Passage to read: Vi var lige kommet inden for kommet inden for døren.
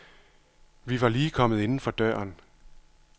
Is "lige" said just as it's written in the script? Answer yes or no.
yes